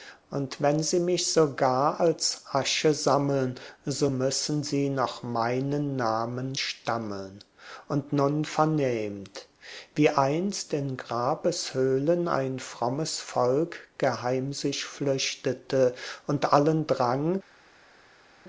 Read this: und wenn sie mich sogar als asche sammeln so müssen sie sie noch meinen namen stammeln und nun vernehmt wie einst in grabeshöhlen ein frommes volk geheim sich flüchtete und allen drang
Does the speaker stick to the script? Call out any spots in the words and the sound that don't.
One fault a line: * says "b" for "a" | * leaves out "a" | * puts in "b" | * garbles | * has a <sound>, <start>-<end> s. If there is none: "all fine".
* leaves out "sie"